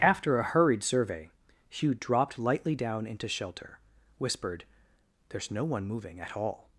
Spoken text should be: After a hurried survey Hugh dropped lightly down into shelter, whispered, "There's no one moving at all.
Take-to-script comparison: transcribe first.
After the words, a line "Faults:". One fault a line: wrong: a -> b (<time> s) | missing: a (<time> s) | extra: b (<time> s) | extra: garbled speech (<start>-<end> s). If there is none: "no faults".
After a hurried survey Hugh dropped lightly down into shelter, whispered, "There's no one moving at all.
Faults:
no faults